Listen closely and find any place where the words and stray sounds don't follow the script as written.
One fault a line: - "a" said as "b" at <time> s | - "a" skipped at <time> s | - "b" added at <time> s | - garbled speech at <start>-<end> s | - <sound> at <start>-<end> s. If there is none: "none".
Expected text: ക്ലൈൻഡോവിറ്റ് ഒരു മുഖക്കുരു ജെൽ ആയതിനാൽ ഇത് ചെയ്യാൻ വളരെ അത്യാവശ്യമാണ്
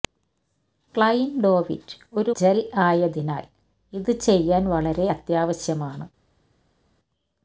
- "മുഖക്കുരു" skipped at 2.3 s